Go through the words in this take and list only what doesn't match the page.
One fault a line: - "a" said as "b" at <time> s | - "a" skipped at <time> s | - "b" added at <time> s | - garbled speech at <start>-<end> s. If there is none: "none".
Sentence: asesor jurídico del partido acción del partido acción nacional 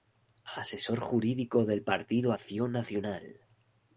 - "del partido acción" skipped at 2.7 s